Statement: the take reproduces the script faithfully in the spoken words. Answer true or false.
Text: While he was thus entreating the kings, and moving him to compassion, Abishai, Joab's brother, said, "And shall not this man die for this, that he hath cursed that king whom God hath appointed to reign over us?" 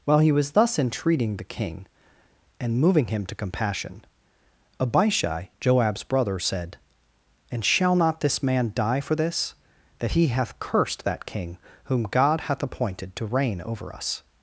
false